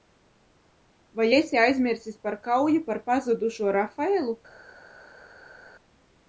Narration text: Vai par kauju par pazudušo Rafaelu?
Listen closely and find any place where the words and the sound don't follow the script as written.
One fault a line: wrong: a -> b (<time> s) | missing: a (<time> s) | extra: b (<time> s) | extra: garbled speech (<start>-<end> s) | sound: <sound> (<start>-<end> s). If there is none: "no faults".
extra: esi aizmirsis (1.4 s)